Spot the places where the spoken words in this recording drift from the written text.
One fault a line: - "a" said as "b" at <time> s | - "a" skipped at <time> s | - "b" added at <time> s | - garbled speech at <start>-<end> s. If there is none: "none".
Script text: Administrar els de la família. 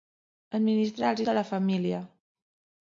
none